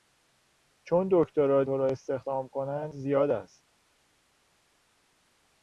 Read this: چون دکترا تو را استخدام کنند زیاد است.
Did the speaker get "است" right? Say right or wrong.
right